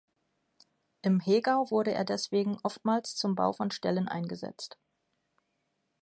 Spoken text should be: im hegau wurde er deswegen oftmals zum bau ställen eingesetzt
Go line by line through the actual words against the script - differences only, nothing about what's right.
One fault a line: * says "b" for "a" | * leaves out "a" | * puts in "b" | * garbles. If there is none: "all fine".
* puts in "von"